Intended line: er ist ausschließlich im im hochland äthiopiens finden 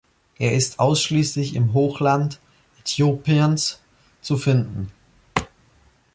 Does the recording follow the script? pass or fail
fail